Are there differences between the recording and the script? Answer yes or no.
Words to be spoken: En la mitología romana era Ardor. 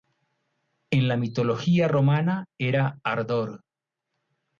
no